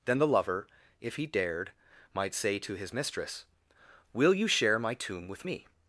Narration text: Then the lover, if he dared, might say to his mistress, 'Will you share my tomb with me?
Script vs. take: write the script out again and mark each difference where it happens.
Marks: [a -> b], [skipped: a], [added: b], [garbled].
Then the lover, if he dared, might say to his mistress, 'Will you share my tomb with me?